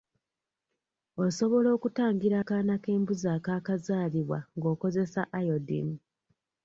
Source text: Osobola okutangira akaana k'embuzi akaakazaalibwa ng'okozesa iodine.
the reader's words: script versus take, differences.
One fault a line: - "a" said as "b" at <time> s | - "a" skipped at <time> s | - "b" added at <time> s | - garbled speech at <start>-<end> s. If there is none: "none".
none